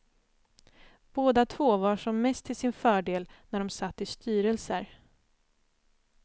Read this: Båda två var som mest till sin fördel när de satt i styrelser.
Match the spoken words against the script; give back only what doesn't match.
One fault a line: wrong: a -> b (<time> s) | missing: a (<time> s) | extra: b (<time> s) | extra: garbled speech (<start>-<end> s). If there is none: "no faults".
no faults